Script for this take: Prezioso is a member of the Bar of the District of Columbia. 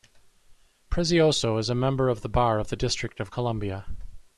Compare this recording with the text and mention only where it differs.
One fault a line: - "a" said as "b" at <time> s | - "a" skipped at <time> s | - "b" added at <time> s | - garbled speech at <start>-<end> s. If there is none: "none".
none